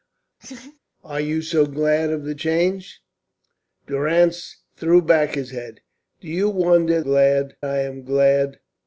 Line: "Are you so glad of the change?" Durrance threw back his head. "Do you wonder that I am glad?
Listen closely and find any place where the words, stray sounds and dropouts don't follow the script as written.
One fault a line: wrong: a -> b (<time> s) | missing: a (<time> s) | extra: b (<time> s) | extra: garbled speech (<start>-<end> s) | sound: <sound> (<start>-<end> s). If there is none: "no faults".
sound: laugh (0.4-0.8 s)
wrong: that -> glad (7.0 s)